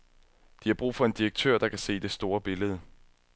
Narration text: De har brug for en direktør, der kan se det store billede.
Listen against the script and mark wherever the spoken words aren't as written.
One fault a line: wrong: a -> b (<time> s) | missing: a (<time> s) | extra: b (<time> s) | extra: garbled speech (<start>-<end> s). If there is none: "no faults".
no faults